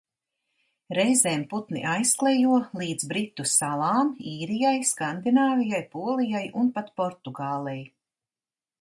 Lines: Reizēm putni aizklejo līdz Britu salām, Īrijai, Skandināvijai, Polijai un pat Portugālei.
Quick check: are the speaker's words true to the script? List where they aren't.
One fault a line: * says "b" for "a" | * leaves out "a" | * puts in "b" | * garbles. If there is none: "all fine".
all fine